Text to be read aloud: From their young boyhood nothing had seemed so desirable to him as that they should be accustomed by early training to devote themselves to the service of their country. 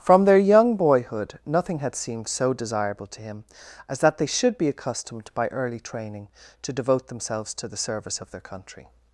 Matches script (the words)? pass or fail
pass